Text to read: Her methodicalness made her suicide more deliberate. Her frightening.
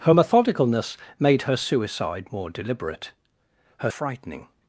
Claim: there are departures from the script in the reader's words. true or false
false